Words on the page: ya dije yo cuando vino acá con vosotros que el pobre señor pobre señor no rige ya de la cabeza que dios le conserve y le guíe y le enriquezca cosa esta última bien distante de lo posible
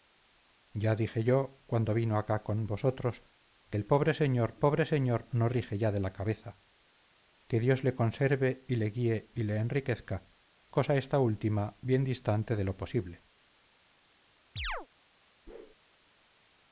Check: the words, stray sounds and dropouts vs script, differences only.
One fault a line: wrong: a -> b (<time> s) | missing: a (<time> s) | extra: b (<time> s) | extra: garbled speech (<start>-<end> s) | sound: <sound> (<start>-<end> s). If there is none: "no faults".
sound: chirp (14.6-14.9 s)
sound: whoosh (15.5-15.8 s)